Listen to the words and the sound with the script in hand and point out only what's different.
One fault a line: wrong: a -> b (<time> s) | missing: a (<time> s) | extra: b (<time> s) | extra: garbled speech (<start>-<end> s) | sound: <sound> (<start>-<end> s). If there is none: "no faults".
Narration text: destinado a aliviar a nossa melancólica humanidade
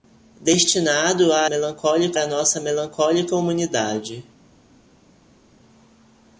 wrong: aliviar -> melancólica (1.4 s)